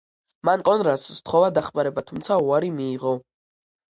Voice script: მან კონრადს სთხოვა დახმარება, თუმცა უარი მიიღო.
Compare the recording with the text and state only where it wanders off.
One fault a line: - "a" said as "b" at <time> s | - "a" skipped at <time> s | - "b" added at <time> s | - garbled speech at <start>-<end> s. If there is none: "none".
none